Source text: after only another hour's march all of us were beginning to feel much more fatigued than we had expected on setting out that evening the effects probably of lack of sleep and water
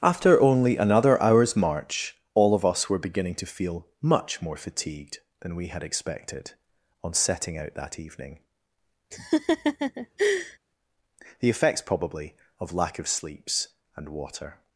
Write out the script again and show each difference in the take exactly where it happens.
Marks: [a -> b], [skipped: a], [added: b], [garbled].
after only another hour's march all of us were beginning to feel much more fatigued than we had expected on setting out that evening the effects probably of lack of [sleep -> sleeps] and water